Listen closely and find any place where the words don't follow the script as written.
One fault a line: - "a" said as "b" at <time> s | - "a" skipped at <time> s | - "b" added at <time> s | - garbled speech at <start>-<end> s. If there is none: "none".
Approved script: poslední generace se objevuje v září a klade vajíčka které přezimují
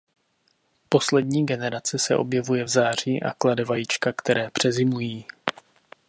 none